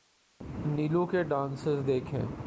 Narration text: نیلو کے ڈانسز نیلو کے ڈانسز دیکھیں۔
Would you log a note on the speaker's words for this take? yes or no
yes